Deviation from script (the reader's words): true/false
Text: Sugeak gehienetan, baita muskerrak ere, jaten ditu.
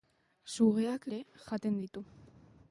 true